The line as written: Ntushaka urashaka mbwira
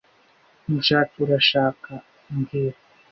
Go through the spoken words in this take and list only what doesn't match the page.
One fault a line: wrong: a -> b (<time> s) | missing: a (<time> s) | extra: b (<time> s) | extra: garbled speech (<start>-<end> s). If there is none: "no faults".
no faults